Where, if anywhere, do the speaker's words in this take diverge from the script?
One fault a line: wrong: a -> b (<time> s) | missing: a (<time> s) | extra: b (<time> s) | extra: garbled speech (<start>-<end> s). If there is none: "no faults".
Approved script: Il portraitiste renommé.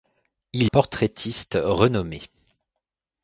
no faults